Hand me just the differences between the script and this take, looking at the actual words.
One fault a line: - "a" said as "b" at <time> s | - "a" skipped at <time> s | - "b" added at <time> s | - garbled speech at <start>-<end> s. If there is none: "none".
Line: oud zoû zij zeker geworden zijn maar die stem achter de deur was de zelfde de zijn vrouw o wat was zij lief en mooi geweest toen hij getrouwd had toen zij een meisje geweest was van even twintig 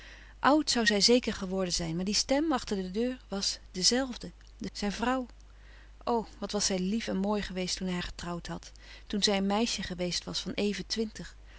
none